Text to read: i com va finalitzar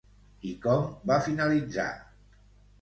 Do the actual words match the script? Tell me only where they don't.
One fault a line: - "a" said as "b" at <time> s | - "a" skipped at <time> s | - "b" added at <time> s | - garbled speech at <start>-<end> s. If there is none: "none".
none